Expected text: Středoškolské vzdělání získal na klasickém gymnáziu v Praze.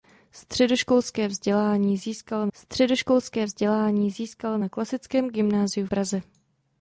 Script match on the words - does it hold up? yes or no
no